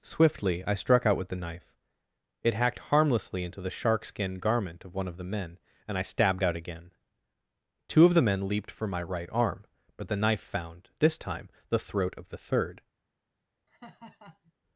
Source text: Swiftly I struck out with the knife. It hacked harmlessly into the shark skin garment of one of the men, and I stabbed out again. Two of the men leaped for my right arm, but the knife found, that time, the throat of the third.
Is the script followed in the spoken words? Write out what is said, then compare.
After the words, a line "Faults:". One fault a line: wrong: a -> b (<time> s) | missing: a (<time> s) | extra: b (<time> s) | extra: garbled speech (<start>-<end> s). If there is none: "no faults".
Swiftly I struck out with the knife. It hacked harmlessly into the shark skin garment of one of the men, and I stabbed out again. Two of the men leaped for my right arm, but the knife found, this time, the throat of the third.
Faults:
wrong: that -> this (11.0 s)